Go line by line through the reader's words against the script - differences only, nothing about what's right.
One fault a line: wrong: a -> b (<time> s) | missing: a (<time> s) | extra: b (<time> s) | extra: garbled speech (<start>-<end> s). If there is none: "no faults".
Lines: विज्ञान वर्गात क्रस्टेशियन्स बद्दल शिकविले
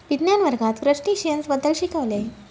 no faults